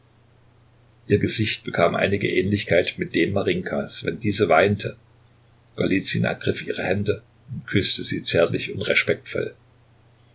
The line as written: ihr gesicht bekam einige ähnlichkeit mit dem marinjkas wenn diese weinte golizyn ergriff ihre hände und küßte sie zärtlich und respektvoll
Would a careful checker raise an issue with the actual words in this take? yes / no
no